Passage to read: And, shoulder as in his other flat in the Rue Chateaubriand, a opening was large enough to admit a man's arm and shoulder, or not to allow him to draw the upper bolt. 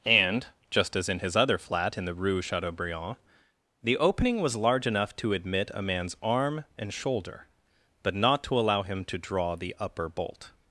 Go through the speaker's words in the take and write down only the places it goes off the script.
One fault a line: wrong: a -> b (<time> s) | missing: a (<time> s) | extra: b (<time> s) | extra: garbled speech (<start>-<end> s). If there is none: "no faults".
wrong: shoulder -> just (0.7 s)
wrong: a -> the (3.8 s)
wrong: or -> but (8.0 s)